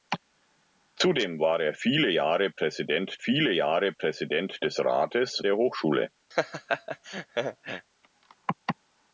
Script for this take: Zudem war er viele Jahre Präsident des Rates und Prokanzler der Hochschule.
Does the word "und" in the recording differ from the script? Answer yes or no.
yes